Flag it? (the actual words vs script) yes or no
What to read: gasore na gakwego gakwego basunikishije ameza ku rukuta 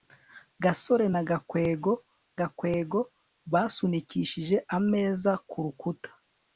no